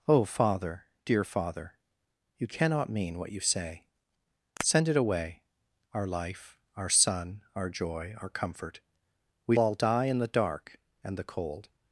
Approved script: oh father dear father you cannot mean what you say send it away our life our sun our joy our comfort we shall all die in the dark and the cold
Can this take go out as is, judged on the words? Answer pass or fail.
fail